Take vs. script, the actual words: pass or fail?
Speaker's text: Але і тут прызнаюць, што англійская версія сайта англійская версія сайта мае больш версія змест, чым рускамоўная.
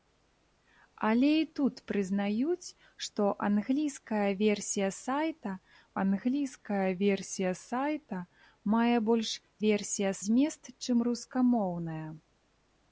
pass